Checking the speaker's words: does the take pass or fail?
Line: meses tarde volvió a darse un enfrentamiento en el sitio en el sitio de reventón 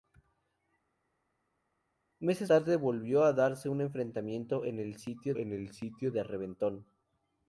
pass